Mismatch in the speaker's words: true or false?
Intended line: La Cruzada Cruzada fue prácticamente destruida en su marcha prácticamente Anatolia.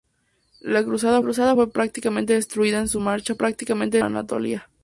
false